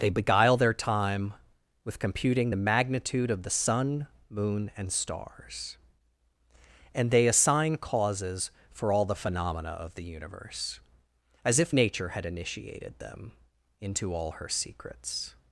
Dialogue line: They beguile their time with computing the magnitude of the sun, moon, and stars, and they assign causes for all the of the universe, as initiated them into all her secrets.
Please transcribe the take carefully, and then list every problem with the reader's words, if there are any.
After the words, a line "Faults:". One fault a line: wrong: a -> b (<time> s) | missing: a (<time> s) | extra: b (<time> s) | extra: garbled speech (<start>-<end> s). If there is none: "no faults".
They beguile their time with computing the magnitude of the sun, moon, and stars, and they assign causes for all the phenomena of the universe, as if nature had initiated them into all her secrets.
Faults:
extra: phenomena (9.1 s)
extra: if nature had (11.6 s)